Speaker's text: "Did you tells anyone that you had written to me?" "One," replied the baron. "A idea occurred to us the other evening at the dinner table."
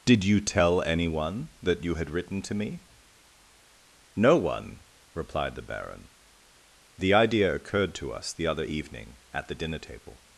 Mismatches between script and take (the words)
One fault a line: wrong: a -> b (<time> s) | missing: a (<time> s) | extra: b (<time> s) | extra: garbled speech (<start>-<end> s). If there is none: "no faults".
wrong: tells -> tell (0.4 s)
extra: No (4.2 s)
wrong: A -> The (7.0 s)